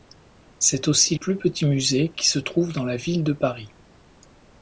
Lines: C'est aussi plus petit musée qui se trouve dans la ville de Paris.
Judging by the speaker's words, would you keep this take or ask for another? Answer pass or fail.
pass